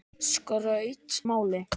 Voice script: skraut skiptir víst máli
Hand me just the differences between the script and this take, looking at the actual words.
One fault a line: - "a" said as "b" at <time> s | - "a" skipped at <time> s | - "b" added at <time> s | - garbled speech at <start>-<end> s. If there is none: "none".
- "skiptir víst" skipped at 1.1 s